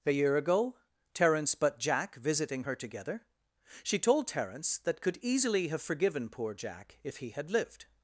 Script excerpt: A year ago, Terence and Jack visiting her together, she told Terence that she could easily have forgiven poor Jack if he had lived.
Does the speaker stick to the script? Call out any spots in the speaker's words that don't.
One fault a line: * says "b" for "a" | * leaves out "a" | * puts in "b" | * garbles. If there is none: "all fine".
* says "but" for "and"
* leaves out "she"